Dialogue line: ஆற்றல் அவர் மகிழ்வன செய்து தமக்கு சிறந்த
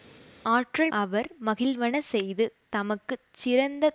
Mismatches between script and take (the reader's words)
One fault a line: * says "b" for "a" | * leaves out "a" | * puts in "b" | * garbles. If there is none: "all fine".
all fine